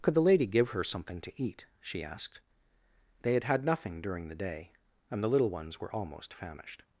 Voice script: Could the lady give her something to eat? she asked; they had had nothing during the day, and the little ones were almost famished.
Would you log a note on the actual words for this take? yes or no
no